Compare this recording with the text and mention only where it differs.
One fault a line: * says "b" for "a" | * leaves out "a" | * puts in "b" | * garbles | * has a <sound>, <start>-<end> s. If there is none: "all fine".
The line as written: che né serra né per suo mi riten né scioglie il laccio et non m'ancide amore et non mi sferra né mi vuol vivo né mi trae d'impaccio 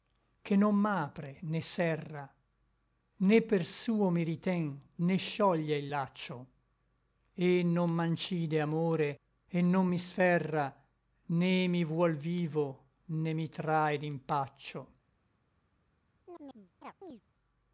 * puts in "non m'apre"
* has a chirp, 16.3-17.2 s